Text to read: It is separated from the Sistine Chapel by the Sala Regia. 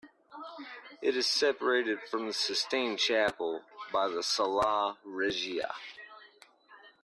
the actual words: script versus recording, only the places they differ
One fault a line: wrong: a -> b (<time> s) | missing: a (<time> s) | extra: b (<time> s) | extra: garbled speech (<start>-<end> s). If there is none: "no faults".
no faults